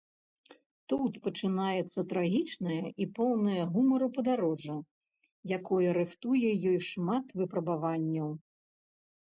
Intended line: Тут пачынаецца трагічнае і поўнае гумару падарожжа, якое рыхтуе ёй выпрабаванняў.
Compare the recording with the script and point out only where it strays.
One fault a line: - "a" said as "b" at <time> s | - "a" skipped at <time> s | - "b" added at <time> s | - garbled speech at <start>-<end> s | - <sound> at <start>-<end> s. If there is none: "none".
- "шмат" added at 6.9 s